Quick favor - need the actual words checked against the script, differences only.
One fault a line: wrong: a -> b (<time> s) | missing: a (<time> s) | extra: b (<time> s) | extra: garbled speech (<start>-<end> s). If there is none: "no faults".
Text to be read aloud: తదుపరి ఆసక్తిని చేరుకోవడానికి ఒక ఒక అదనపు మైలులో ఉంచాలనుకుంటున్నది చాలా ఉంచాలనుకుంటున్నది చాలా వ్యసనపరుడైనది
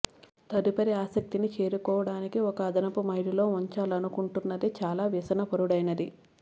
missing: ఒక (2.6 s)
missing: ఉంచాలనుకుంటున్నది చాలా (5.0 s)